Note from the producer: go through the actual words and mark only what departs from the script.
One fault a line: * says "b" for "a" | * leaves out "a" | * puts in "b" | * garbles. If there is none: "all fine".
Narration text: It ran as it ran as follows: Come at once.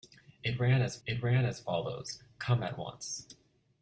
all fine